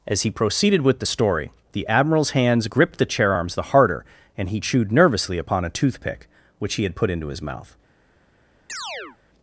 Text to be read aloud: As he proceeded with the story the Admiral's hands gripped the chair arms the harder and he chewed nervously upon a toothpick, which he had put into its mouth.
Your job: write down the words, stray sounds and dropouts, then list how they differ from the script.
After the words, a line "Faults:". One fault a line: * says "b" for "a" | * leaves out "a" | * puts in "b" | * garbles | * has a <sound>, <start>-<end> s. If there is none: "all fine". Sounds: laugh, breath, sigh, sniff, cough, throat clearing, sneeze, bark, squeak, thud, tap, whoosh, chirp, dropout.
As he proceeded with the story the Admiral's hands gripped the chair arms the harder and he chewed nervously upon a toothpick, which he had put into his mouth.
Faults:
* says "his" for "its"
* has a chirp, 8.7-9.2 s